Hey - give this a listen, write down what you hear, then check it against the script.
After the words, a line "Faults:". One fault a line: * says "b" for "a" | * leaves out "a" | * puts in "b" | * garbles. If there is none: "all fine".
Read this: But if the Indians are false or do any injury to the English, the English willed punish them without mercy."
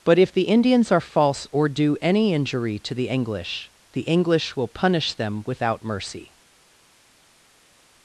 But if the Indians are false or do any injury to the English, the English will punish them without mercy."
Faults:
* says "will" for "willed"